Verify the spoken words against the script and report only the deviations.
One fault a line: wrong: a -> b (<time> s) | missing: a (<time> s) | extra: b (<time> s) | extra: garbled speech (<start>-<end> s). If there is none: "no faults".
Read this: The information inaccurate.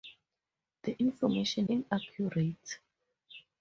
no faults